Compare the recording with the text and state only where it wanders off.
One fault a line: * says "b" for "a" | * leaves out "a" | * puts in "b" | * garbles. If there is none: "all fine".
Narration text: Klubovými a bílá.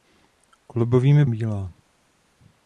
all fine